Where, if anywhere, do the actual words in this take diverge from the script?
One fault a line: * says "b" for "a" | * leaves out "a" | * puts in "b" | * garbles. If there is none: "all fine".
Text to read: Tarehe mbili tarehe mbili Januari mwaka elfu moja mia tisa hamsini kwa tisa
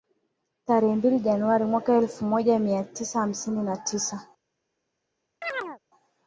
* leaves out "tarehe mbili"
* says "na" for "kwa"